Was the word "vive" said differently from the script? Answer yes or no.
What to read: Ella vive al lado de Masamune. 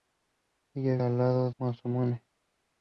yes